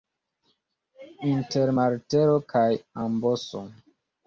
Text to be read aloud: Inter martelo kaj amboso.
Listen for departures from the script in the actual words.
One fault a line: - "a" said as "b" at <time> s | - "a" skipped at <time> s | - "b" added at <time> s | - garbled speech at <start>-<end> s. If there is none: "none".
none